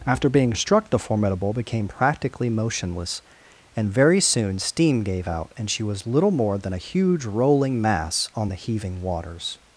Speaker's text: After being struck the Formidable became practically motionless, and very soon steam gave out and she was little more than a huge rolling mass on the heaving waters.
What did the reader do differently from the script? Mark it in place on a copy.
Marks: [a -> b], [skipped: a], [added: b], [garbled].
After being struck the Formidable became practically motionless, and very soon steam gave out and she was little more than a huge rolling mass on the heaving waters.